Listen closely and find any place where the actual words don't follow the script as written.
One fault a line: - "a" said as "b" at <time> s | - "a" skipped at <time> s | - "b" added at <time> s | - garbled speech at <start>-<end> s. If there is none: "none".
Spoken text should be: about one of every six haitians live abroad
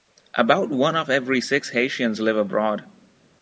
none